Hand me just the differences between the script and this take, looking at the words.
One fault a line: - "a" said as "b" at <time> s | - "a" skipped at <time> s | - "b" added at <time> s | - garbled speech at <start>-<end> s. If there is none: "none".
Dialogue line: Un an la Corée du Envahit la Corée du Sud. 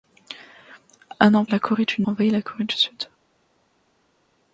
none